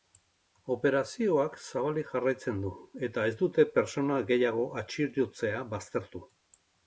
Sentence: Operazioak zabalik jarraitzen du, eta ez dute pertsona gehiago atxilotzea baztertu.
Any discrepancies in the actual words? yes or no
no